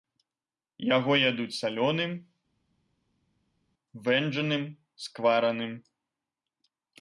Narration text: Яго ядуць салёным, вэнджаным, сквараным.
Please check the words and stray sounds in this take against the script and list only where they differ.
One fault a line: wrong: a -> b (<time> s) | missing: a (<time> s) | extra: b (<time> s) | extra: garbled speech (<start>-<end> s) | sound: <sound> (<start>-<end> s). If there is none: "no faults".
no faults